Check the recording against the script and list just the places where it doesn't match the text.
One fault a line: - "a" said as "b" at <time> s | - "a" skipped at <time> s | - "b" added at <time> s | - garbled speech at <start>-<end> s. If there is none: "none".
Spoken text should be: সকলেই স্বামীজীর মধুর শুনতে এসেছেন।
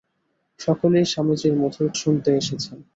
none